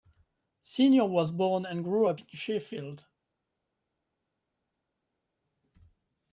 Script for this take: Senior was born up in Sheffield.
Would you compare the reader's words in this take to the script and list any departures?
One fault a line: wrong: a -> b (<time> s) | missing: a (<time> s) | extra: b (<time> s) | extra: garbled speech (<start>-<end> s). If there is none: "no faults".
extra: and grew (1.6 s)